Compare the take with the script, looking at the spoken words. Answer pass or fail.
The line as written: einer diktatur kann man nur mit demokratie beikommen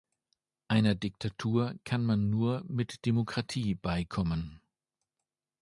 pass